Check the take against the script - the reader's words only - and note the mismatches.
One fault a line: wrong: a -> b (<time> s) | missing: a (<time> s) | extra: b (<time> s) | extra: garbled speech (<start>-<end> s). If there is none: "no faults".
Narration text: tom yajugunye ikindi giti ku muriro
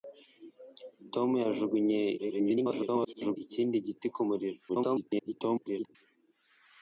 extra: garbled speech (2.2-3.4 s)
extra: garbled speech (4.7-6.0 s)